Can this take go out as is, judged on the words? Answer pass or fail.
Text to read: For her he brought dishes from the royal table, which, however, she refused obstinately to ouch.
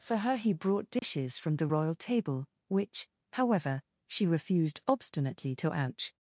pass